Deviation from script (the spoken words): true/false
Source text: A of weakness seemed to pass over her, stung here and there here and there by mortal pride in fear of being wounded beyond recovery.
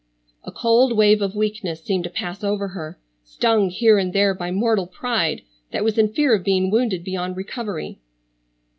true